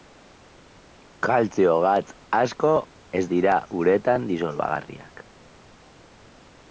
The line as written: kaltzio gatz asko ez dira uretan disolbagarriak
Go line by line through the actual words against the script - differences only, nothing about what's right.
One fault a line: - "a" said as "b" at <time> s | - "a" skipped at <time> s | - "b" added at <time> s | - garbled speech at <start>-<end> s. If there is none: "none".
none